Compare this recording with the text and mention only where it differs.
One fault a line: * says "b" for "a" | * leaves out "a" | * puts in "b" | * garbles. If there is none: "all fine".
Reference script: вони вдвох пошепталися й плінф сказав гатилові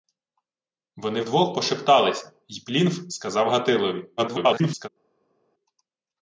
* garbles